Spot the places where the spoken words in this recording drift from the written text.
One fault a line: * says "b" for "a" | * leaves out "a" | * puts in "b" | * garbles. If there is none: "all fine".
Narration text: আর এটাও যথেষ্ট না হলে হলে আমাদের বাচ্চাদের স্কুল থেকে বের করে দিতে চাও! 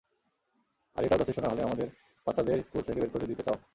* leaves out "হলে"